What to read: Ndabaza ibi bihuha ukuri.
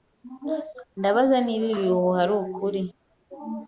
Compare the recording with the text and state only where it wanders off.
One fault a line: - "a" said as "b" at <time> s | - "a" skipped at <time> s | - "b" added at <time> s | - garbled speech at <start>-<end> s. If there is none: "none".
- "niba" added at 1.4 s
- "ari" added at 2.2 s